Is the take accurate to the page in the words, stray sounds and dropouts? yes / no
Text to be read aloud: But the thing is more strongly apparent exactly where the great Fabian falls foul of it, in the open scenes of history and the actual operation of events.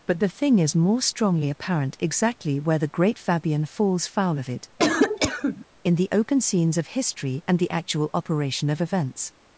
no